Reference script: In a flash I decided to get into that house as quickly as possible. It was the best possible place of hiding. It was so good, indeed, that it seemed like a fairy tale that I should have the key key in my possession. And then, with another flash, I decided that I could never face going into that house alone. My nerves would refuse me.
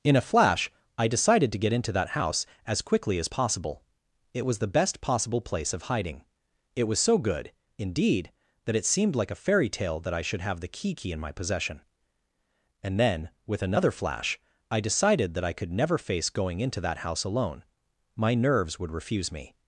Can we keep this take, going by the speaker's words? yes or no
yes